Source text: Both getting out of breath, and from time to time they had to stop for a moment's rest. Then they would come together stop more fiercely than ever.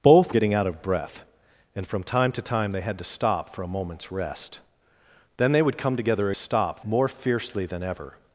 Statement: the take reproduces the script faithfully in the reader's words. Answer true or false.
true